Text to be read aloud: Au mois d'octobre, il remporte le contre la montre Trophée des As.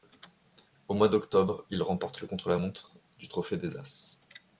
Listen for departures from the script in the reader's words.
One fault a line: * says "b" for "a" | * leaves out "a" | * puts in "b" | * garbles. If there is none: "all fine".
* puts in "du"